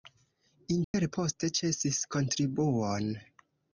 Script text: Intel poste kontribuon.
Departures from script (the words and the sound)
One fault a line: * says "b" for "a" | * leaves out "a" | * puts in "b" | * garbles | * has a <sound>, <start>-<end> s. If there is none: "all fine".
* has a dropout, 0.8-0.9 s
* puts in "ĉesis"